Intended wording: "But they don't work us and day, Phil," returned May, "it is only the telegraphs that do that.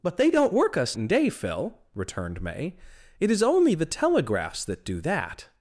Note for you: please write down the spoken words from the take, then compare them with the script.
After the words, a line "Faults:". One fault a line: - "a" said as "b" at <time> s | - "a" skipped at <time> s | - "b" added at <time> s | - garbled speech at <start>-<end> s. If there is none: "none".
"But they don't work us and day, Phil," returned May, "it is only the telegraphs that do that.
Faults:
none